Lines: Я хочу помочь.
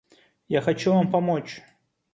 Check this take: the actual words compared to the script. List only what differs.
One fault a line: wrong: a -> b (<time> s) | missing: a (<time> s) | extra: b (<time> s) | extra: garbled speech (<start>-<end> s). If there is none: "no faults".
extra: вам (0.9 s)